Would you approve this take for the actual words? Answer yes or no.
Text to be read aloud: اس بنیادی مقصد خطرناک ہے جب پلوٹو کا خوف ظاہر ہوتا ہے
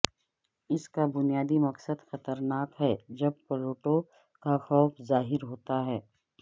no